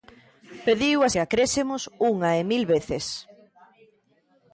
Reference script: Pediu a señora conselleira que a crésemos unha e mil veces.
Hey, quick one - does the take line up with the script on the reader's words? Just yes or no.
no